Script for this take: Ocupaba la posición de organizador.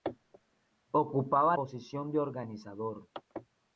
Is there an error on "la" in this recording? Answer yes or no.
yes